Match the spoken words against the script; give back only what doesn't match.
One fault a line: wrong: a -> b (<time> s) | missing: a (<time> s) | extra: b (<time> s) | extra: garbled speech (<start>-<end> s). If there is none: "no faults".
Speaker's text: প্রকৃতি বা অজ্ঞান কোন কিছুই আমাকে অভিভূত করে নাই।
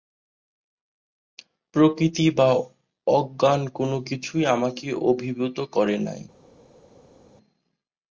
no faults